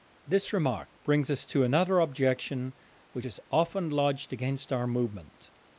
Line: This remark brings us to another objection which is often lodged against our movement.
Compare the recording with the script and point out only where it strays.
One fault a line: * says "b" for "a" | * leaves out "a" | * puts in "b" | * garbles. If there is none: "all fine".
all fine